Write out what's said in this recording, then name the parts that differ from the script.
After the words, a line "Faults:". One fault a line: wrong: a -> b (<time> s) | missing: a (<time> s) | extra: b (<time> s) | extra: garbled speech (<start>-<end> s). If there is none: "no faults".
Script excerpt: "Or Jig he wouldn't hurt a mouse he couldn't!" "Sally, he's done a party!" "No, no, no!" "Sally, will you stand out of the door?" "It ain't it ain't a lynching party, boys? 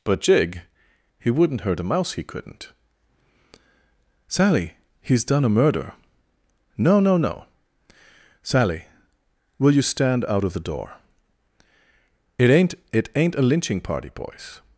"But Jig he wouldn't hurt a mouse he couldn't!" "Sally, he's done a murder!" "No, no, no!" "Sally, will you stand out of the door?" "It ain't it ain't a lynching party, boys?
Faults:
wrong: Or -> But (0.0 s)
wrong: party -> murder (5.5 s)